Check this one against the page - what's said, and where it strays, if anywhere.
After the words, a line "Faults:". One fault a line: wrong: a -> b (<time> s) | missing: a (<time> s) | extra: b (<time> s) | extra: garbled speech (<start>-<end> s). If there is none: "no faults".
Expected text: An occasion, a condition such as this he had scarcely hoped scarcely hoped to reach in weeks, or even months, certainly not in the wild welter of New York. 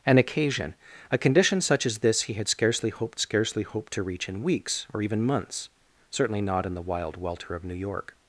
An occasion, a condition such as this he had scarcely hoped scarcely hoped to reach in weeks, or even months, certainly not in the wild welter of New York.
Faults:
no faults